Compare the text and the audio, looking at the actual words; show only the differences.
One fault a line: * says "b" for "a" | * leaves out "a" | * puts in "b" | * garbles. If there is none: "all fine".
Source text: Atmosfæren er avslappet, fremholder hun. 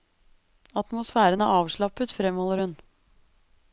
all fine